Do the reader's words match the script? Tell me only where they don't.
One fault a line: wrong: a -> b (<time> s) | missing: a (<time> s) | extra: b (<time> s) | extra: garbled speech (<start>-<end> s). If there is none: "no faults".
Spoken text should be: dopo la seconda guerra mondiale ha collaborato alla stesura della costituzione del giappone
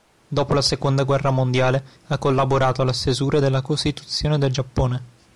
no faults